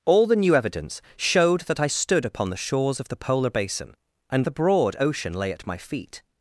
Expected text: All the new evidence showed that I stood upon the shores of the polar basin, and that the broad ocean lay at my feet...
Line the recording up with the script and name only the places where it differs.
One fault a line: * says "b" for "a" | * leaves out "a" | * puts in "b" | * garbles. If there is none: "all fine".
* leaves out "that"